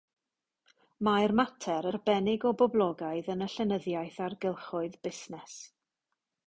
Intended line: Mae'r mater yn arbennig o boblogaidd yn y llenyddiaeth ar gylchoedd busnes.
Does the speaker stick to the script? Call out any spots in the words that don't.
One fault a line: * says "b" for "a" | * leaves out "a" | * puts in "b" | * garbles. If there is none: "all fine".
* leaves out "yn"